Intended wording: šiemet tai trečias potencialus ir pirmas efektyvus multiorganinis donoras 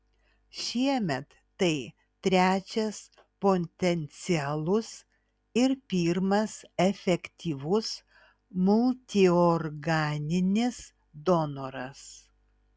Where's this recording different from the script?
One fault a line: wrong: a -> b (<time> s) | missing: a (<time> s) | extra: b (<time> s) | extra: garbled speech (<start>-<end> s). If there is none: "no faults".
no faults